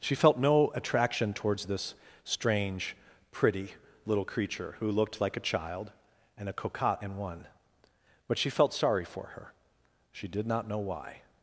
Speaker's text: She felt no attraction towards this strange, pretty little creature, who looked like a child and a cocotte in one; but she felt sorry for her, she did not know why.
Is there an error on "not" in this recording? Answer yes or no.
no